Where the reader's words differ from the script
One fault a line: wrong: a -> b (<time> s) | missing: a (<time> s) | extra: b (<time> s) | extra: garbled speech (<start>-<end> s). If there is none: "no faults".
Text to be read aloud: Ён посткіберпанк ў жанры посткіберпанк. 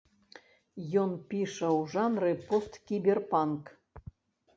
wrong: посткіберпанк -> піша (1.3 s)